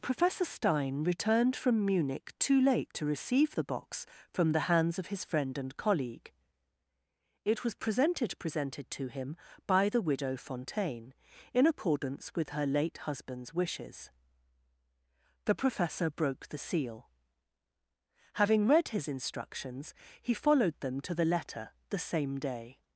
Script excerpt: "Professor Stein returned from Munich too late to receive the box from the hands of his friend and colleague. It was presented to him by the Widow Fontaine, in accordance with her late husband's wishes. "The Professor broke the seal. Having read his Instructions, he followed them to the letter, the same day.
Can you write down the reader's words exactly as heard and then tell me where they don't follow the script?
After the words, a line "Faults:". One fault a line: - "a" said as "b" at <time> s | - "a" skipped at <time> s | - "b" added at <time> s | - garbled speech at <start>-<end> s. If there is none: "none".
"Professor Stein returned from Munich too late to receive the box from the hands of his friend and colleague. It was presented presented to him by the Widow Fontaine, in accordance with her late husband's wishes. "The Professor broke the seal. Having read his Instructions, he followed them to the letter, the same day.
Faults:
- "presented" added at 8.4 s